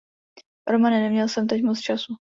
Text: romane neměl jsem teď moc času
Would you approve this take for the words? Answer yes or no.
yes